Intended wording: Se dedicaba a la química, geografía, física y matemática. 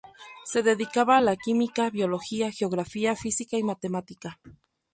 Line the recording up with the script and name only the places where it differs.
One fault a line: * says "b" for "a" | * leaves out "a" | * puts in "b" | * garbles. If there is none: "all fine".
* puts in "biología"